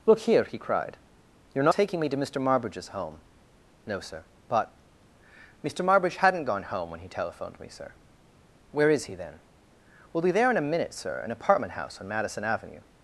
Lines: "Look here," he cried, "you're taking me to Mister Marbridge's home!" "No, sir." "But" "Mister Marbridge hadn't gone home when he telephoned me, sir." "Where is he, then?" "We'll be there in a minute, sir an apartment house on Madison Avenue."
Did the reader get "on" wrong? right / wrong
right